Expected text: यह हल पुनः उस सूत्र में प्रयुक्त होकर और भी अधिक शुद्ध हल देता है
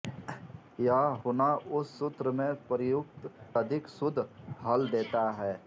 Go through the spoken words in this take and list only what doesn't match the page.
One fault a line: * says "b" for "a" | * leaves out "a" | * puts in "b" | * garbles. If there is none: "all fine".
* leaves out "हल"
* leaves out "होकर और भी"